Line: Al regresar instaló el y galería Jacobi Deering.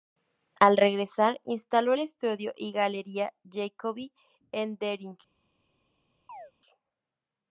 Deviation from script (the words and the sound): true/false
true